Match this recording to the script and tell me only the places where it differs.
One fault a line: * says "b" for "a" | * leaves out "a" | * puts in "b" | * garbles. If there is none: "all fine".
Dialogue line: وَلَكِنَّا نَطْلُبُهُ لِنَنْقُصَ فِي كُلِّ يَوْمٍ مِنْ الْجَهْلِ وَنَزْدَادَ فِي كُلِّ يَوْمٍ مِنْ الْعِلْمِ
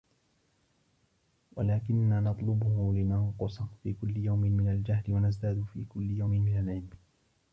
all fine